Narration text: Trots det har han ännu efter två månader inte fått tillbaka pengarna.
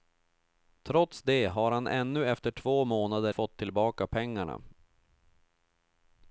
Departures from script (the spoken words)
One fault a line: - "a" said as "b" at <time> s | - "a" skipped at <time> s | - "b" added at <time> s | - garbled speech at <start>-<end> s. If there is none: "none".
- "inte" skipped at 3.3 s